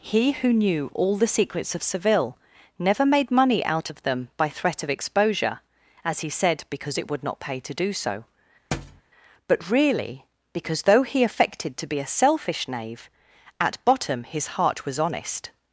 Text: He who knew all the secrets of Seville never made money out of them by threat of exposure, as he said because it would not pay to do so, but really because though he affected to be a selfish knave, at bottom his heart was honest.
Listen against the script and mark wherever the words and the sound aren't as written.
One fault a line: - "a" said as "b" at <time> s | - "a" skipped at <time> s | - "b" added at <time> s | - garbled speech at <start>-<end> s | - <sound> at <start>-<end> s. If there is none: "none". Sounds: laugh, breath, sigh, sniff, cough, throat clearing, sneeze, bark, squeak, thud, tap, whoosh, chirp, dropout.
- thud at 8.7-9.0 s